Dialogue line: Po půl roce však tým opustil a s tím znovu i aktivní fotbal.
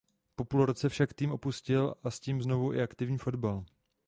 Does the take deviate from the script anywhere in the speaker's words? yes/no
no